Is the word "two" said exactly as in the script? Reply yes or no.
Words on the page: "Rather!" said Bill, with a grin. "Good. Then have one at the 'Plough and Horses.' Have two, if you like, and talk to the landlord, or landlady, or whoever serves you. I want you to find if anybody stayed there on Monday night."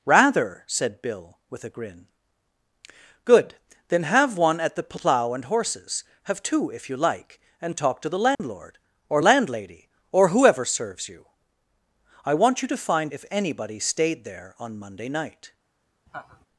yes